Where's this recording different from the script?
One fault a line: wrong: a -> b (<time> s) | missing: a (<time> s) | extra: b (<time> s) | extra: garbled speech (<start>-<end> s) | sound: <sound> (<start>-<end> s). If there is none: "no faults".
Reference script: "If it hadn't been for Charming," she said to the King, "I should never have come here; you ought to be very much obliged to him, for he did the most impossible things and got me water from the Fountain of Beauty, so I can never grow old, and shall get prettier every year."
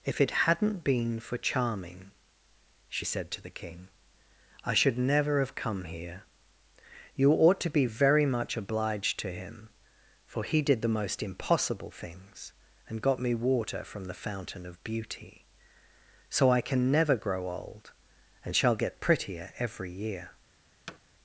sound: thud (20.9-21.0 s)